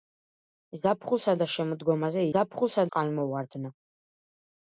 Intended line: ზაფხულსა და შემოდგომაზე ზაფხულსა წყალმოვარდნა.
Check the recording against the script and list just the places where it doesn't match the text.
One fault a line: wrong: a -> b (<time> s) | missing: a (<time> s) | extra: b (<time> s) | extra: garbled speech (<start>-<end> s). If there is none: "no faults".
no faults